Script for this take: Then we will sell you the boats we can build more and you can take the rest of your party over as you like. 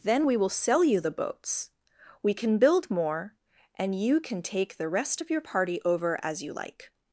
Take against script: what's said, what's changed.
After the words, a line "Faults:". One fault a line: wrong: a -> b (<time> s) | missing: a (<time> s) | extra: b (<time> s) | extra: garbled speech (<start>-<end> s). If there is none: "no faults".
Then we will sell you the boats we can build more and you can take the rest of your party over as you like.
Faults:
no faults